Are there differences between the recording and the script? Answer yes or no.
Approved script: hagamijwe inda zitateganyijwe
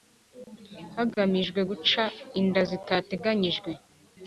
yes